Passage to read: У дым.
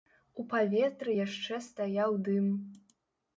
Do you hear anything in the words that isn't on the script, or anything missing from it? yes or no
yes